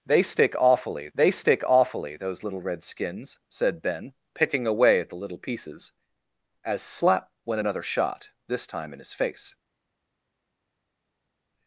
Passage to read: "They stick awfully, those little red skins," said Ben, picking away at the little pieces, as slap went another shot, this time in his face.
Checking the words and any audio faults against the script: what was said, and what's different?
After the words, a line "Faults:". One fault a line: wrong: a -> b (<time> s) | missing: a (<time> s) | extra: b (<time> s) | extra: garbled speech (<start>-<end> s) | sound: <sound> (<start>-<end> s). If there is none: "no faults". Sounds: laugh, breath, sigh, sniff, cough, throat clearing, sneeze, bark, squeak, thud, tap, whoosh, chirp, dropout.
"They stick awfully they stick awfully, those little red skins," said Ben, picking away at the little pieces, as slap went another shot, this time in his face.
Faults:
extra: they stick awfully (1.1 s)